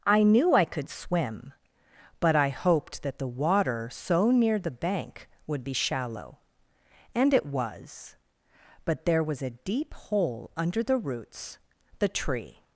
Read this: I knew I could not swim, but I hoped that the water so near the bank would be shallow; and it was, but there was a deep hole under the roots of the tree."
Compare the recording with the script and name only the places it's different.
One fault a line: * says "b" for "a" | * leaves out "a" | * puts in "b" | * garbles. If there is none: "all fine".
* leaves out "not"
* leaves out "of"